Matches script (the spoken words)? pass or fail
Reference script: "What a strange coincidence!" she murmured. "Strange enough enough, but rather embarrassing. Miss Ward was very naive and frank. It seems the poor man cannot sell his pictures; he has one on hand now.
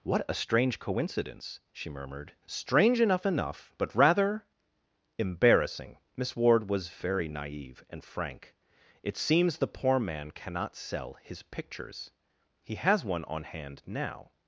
pass